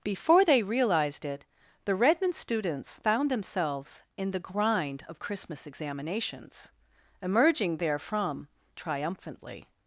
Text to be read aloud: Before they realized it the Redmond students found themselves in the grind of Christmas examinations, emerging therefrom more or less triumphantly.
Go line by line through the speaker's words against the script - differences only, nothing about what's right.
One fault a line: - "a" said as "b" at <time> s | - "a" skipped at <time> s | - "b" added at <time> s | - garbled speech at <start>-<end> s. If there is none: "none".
- "more or less" skipped at 8.5 s